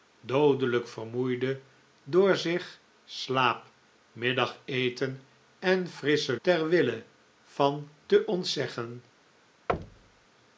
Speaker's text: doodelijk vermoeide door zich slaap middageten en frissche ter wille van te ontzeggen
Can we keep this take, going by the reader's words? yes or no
yes